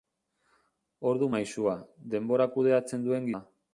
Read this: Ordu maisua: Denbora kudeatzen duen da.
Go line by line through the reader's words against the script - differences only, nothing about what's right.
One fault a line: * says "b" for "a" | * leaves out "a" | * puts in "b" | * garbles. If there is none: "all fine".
all fine